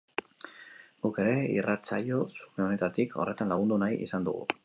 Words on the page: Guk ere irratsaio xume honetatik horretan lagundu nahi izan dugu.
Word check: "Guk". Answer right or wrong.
right